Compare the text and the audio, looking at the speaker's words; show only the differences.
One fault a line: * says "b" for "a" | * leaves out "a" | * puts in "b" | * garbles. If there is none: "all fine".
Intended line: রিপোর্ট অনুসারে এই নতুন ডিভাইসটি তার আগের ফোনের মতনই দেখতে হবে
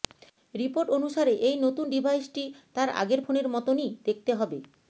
all fine